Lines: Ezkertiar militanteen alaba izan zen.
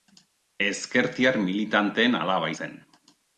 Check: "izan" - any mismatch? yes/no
yes